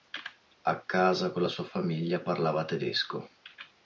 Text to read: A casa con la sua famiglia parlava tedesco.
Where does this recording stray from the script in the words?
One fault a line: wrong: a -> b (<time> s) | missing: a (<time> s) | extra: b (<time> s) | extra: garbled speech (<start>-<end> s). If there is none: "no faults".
no faults